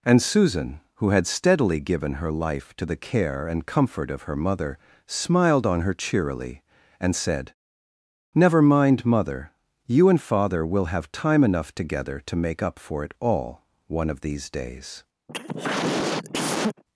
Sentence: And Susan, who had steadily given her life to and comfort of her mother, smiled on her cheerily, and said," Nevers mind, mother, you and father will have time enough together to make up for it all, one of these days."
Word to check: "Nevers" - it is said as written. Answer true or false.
false